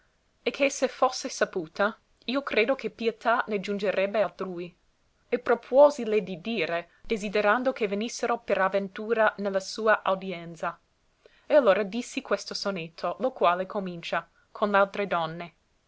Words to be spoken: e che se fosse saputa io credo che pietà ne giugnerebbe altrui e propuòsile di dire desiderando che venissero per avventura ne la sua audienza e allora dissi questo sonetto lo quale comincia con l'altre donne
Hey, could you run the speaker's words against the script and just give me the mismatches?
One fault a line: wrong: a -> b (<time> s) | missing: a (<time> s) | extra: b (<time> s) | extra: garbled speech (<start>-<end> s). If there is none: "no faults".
no faults